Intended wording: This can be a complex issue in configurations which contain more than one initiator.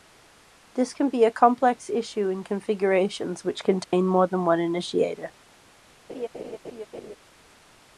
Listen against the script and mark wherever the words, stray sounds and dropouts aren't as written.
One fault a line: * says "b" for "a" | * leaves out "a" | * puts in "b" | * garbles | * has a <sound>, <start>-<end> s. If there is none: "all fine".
* has a dropout, 3.8-3.9 s
* has a laugh, 6.1-7.2 s